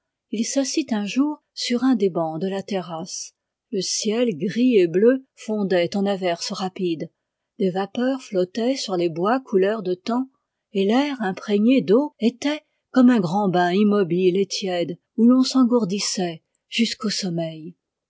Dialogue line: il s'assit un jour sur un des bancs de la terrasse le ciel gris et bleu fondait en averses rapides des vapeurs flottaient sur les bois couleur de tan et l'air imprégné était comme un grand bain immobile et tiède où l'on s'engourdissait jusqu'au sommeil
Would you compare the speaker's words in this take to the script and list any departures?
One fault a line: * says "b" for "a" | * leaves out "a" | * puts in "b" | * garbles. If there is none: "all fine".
* puts in "d'eau"